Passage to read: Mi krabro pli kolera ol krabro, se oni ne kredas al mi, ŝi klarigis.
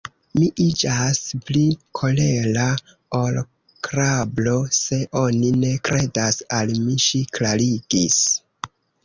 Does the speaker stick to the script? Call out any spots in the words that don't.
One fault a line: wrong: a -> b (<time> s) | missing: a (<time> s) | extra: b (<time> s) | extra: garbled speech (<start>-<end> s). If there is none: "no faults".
wrong: krabro -> iĝas (0.6 s)